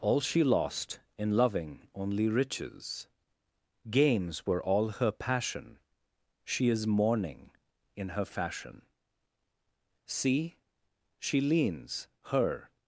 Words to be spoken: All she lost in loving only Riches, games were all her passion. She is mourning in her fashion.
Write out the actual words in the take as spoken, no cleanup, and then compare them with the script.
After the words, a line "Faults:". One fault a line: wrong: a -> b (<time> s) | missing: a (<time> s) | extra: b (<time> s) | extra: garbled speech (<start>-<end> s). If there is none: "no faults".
All she lost in loving only Riches, games were all her passion. She is mourning in her fashion. See, she leans, her
Faults:
extra: See she leans her (10.0 s)